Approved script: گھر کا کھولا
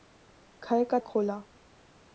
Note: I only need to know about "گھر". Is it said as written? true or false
true